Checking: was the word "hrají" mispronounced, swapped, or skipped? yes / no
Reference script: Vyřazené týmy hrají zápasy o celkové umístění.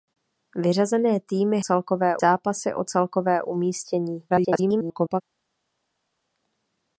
yes